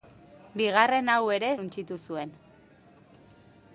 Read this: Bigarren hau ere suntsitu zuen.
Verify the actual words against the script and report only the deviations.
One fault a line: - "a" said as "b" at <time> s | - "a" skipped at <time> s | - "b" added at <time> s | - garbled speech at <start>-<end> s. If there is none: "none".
none